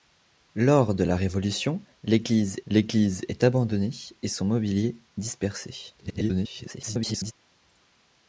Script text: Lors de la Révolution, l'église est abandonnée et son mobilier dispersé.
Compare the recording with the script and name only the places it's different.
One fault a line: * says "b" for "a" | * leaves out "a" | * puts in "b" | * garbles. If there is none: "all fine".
* puts in "l'église"
* garbles